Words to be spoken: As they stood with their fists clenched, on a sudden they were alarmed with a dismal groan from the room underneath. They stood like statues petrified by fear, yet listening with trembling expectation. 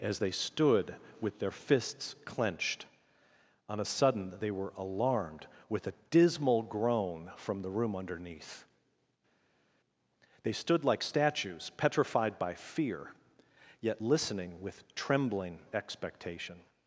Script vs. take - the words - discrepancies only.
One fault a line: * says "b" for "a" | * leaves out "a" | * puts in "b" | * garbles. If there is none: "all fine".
all fine